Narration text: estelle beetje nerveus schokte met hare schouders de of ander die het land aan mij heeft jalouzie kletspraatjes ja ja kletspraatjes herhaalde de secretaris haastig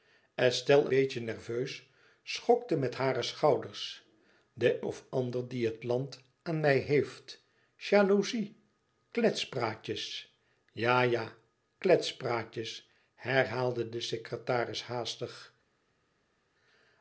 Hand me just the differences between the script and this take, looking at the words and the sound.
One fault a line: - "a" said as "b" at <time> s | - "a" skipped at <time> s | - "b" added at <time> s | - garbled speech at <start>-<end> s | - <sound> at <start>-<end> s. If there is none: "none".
none